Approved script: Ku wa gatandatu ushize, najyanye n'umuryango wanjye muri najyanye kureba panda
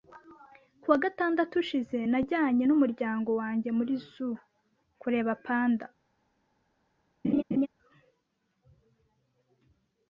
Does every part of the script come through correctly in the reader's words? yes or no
no